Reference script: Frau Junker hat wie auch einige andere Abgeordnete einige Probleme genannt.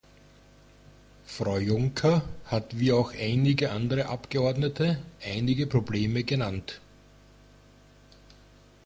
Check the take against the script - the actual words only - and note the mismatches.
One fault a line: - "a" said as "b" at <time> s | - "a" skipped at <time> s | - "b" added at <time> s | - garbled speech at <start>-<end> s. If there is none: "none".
none